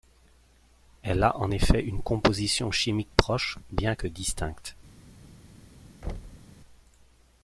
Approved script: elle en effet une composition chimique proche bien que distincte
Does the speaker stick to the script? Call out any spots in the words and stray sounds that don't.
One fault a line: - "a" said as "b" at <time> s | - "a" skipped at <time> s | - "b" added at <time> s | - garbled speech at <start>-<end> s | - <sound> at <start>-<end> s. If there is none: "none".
- "a" added at 1.2 s
- thud at 6.0-6.5 s